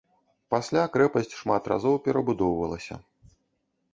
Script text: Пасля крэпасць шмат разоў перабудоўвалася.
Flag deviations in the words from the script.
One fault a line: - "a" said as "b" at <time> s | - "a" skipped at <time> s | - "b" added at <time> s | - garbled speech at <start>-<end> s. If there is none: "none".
none